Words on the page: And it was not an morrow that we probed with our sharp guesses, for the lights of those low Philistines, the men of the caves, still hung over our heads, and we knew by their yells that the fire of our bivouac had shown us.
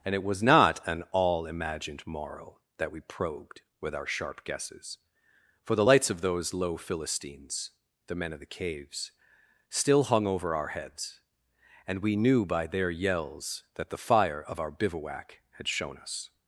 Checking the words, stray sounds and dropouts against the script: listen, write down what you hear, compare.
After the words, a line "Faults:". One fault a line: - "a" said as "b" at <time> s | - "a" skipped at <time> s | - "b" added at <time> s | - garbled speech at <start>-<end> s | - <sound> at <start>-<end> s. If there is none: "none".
And it was not an all imagined morrow that we probed with our sharp guesses, for the lights of those low Philistines, the men of the caves, still hung over our heads, and we knew by their yells that the fire of our bivouac had shown us.
Faults:
- "all imagined" added at 1.1 s